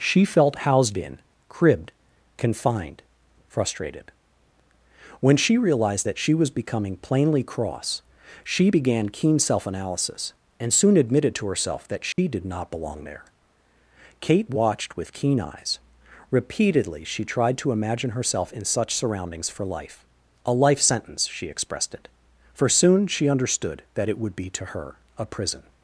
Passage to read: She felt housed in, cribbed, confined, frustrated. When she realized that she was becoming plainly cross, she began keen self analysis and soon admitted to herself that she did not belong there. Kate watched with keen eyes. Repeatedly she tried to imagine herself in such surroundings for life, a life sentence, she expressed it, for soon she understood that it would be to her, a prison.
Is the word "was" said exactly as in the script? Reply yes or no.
yes